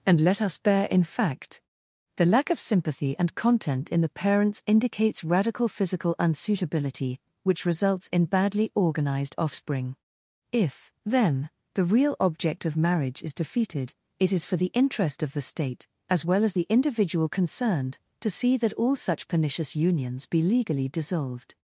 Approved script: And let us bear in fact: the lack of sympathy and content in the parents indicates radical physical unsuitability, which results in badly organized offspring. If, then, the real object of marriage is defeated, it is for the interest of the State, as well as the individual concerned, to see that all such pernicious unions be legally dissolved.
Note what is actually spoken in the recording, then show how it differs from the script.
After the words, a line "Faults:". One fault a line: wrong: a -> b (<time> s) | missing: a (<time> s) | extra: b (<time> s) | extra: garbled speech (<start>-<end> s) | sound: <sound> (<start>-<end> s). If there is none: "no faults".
And let us bear in fact: the lack of sympathy and content in the parents indicates radical physical unsuitability, which results in badly organized offspring. If, then, the real object of marriage is defeated, it is for the interest of the State, as well as the individual concerned, to see that all such pernicious unions be legally dissolved.
Faults:
no faults